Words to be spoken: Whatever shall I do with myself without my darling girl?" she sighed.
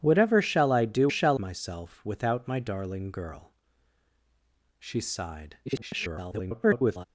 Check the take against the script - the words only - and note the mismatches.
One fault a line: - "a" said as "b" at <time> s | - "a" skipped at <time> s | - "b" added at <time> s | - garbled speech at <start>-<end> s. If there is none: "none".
- "with" said as "shall" at 1.1 s
- garbled speech at 5.7-7.1 s